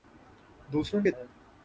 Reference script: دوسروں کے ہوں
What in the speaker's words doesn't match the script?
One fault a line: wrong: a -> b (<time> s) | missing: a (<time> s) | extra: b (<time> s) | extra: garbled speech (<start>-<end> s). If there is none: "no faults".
no faults